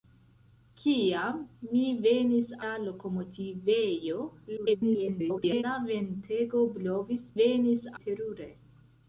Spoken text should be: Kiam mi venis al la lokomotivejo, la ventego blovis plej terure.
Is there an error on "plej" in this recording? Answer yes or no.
yes